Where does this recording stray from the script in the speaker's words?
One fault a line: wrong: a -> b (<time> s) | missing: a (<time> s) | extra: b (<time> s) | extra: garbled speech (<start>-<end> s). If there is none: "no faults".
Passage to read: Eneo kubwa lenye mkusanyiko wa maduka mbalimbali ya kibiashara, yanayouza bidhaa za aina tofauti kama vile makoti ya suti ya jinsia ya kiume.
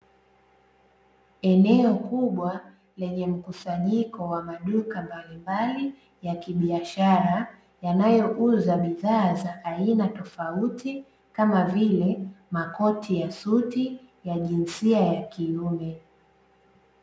no faults